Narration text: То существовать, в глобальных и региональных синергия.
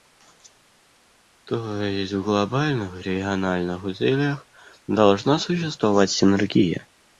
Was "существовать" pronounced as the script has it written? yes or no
no